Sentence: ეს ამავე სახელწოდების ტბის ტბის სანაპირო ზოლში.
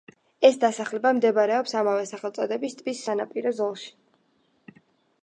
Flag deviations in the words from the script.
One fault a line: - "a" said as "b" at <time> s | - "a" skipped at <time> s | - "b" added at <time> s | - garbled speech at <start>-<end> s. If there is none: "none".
- "დასახლება მდებარეობს" added at 0.6 s
- "ტბის" skipped at 3.0 s